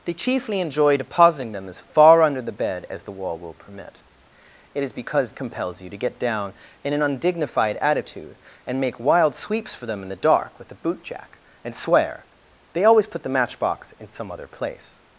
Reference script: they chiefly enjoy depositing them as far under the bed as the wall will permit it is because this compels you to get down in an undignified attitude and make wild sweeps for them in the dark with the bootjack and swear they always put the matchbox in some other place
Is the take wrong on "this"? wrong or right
wrong